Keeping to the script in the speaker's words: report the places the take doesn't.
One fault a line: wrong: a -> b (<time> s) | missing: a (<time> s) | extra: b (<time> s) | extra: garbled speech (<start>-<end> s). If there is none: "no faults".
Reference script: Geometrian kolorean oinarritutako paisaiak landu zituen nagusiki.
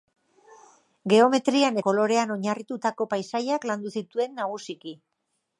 no faults